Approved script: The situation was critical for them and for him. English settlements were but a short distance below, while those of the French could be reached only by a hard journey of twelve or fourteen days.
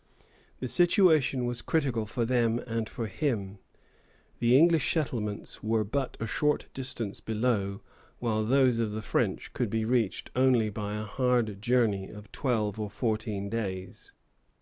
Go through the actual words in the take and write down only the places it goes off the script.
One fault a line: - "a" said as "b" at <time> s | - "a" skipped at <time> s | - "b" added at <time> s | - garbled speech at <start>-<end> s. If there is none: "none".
- "The" added at 4.4 s